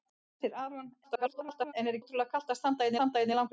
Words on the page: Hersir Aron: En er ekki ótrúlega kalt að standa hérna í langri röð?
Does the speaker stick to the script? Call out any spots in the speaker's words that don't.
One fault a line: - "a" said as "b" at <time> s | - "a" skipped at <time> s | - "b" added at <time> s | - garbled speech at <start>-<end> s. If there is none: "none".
- garbled speech at 1.0-1.7 s
- "ekki" skipped at 2.0 s
- "standa hérna" added at 3.0 s